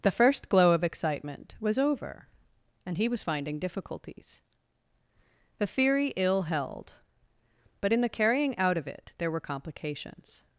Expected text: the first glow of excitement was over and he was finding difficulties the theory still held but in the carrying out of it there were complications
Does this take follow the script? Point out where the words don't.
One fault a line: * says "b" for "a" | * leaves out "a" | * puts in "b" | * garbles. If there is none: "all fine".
* says "ill" for "still"